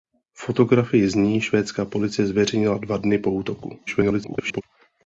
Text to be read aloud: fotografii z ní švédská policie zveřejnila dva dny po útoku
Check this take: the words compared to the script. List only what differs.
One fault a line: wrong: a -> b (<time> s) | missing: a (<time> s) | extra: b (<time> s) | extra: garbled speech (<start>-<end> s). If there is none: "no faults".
extra: garbled speech (3.9-4.6 s)